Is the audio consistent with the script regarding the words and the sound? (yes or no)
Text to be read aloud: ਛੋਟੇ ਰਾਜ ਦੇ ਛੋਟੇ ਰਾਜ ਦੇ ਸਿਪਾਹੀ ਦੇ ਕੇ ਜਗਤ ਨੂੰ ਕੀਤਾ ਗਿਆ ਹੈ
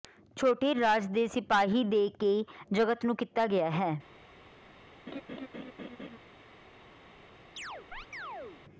no